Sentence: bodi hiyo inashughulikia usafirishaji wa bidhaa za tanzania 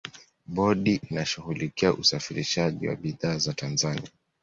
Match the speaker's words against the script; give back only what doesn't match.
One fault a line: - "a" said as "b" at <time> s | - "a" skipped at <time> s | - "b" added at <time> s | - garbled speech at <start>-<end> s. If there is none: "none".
- "hiyo" skipped at 1.0 s